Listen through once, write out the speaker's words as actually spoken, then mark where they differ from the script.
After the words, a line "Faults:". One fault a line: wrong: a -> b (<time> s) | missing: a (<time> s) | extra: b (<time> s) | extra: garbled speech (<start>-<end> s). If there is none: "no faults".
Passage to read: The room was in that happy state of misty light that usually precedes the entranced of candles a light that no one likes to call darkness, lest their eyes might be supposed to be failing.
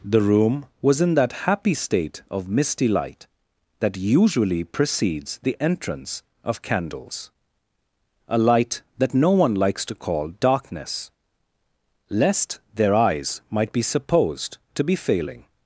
The room was in that happy state of misty light that usually precedes the entrance of candles a light that no one likes to call darkness, lest their eyes might be supposed to be failing.
Faults:
wrong: entranced -> entrance (5.6 s)